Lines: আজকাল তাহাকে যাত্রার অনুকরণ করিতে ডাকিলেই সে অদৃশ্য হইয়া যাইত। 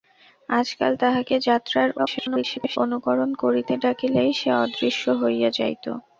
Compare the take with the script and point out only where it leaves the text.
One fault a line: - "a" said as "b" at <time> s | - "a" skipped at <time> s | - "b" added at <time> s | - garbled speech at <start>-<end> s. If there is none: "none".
- garbled speech at 2.0-2.8 s